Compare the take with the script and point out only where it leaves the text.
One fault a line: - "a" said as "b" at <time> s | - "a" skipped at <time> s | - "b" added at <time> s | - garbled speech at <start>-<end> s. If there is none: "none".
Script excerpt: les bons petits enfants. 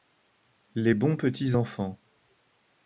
none